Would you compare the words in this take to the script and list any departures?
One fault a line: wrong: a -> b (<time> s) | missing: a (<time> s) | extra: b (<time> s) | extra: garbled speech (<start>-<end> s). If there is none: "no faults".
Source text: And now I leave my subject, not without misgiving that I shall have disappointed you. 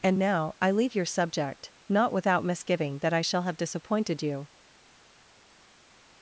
wrong: my -> your (0.9 s)